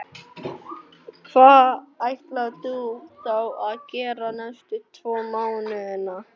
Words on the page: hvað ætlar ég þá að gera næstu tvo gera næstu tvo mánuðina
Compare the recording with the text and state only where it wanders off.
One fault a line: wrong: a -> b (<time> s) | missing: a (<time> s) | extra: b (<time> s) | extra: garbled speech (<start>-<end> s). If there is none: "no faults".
wrong: ég -> þú (2.6 s)
missing: gera næstu tvo (5.2 s)